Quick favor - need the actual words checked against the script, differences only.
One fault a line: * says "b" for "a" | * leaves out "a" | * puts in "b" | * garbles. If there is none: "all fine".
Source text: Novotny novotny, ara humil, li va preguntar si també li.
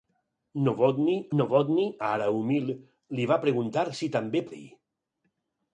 all fine